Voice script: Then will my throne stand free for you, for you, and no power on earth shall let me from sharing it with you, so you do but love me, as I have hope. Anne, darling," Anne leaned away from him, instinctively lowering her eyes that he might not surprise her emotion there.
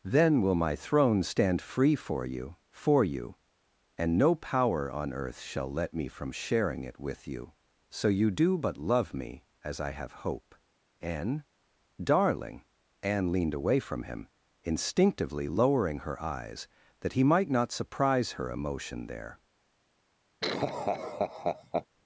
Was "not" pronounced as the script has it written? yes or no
yes